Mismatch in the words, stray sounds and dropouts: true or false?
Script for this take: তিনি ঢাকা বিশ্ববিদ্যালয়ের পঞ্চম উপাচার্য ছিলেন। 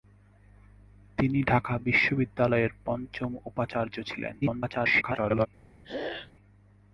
true